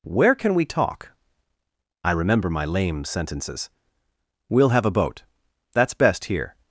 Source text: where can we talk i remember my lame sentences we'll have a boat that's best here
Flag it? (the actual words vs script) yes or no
no